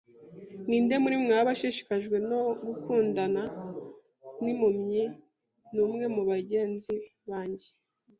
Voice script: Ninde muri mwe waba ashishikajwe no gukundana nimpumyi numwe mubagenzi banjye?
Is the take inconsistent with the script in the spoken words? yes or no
no